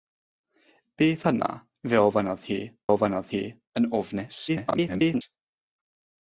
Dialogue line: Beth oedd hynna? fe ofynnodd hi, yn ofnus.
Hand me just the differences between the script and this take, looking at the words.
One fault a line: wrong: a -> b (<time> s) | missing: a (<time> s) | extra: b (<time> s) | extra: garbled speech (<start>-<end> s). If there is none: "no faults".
missing: oedd (1.2 s)
extra: ofynnodd hi (2.9 s)
extra: garbled speech (4.5-5.2 s)